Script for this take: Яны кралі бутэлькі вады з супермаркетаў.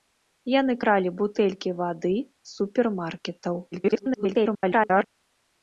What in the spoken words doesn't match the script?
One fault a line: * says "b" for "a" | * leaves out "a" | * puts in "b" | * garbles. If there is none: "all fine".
* garbles